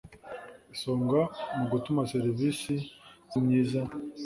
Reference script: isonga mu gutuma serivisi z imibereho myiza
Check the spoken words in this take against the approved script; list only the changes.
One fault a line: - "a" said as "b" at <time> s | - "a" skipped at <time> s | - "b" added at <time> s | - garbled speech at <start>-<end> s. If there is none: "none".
- "imibereho" skipped at 3.3 s